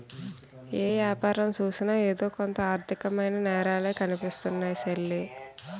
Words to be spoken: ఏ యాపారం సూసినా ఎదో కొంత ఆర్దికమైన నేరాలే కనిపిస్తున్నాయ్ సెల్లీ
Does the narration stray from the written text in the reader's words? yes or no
no